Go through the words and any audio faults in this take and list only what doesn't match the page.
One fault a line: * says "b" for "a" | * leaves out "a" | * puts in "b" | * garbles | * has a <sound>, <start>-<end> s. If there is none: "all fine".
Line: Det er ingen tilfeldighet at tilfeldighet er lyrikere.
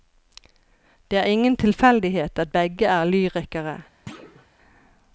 * says "begge" for "tilfeldighet"
* has a thud, 4.1-4.5 s